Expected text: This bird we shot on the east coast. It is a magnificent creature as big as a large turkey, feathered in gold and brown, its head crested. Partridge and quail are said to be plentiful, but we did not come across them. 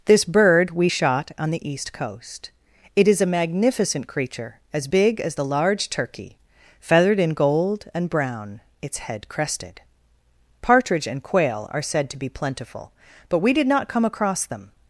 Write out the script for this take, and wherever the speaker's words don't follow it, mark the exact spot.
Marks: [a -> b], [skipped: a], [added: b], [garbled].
This bird we shot on the east coast. It is a magnificent creature as big as [a -> the] large turkey, feathered in gold and brown, its head crested. Partridge and quail are said to be plentiful, but we did not come across them.